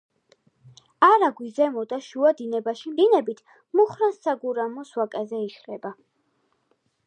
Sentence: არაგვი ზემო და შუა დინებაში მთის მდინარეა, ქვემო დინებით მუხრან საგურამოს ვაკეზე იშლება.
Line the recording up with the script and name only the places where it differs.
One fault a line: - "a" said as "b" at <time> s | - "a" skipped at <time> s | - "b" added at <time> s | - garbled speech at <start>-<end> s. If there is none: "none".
- "მთის მდინარეა ქვემო" skipped at 3.0 s